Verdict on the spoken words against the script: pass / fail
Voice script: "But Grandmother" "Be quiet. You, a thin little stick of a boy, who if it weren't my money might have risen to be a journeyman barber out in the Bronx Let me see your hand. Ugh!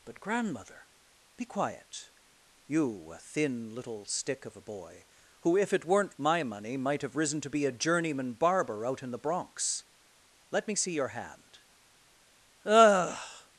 pass